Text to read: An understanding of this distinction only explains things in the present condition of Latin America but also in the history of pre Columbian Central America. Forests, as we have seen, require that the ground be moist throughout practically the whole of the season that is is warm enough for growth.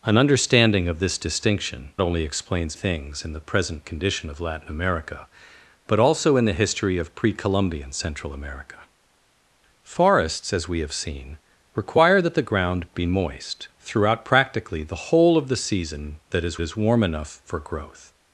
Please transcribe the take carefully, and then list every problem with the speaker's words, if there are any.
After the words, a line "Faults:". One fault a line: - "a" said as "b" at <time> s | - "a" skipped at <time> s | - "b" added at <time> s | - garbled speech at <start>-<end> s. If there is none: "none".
An understanding of this distinction only explains things in the present condition of Latin America but also in the history of pre Columbian Central America. Forests, as we have seen, require that the ground be moist throughout practically the whole of the season that is is warm enough for growth.
Faults:
none